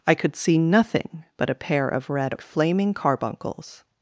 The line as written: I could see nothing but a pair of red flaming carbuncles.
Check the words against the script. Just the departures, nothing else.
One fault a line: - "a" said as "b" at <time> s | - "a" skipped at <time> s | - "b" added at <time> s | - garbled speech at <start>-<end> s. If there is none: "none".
none